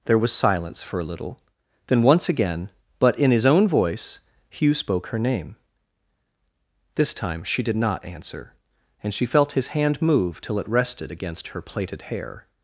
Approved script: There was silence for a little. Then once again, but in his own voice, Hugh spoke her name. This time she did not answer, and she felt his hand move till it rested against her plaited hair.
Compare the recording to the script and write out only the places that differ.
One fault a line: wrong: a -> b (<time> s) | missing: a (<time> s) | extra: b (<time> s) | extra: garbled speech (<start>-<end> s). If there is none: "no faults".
no faults